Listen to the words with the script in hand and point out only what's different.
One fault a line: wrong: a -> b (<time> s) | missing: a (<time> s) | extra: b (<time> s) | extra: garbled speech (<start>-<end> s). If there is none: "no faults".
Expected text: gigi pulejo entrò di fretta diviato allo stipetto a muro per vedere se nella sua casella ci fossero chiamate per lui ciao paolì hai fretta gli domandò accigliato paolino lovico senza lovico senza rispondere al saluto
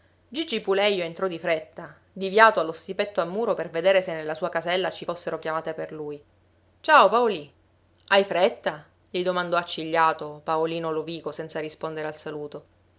missing: lovico senza (11.6 s)